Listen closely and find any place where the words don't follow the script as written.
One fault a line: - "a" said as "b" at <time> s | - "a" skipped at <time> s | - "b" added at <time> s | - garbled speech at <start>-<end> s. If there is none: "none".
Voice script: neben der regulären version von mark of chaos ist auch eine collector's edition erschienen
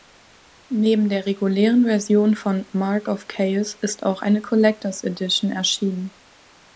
none